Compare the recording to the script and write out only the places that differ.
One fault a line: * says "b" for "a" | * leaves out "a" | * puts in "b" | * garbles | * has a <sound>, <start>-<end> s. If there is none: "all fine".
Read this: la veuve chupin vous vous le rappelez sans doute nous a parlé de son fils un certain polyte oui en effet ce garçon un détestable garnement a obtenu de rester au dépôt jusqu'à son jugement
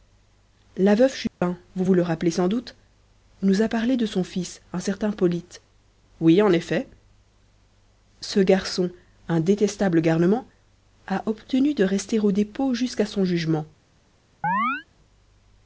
* has a dropout, 1.3-1.4 s
* has a chirp, 14.4-14.9 s